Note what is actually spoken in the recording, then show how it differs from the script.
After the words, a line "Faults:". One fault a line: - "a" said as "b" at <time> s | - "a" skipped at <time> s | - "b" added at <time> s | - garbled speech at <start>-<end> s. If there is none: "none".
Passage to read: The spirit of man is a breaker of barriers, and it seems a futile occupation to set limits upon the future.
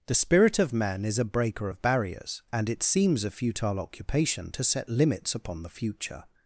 The spirit of man is a breaker of barriers, and it seems a futile occupation to set limits upon the future.
Faults:
none